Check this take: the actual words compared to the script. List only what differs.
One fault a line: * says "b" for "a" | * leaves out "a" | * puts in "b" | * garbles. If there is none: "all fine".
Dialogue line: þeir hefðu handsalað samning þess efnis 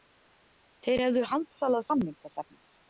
all fine